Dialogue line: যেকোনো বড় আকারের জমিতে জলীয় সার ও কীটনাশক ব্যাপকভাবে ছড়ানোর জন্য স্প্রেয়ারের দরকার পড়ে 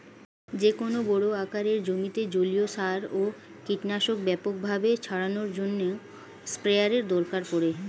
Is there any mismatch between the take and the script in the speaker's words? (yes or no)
no